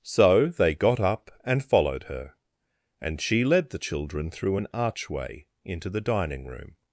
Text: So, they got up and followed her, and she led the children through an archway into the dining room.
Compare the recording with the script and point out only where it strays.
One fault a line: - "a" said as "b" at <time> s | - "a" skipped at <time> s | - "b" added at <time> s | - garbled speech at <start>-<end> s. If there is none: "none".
none